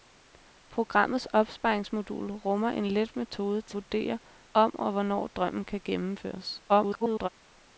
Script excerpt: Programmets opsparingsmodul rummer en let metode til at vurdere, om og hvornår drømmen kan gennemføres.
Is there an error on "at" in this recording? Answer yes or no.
yes